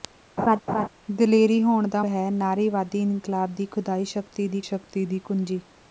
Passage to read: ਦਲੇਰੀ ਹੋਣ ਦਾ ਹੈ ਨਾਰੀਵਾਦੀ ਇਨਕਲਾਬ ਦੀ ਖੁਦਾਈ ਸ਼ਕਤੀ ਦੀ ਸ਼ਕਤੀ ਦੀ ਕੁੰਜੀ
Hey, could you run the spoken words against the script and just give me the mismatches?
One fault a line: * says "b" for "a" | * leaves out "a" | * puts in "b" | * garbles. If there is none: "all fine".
all fine